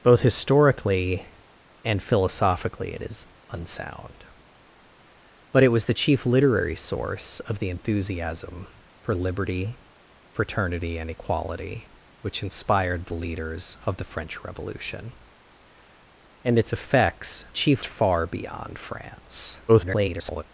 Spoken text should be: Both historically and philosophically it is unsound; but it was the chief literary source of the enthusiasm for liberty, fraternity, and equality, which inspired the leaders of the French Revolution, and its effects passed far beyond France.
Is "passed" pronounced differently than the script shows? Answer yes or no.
yes